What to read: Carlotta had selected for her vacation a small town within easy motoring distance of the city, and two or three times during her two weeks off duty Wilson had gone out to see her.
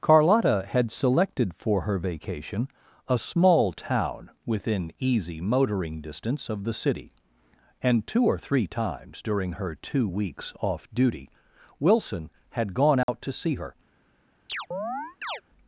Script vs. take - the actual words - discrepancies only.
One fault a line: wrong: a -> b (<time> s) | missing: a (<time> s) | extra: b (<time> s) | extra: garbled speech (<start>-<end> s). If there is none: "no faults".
no faults